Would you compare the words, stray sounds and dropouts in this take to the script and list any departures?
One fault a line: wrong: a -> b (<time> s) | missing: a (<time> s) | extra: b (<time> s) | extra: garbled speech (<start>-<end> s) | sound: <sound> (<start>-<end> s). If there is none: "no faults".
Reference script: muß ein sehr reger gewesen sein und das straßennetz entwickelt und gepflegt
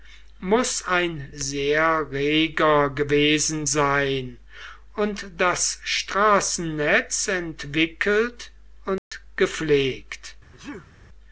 sound: dropout (9.0-9.1 s)
sound: sneeze (10.5-10.9 s)